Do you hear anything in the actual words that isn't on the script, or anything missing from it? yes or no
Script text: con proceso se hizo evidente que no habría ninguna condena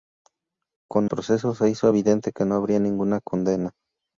no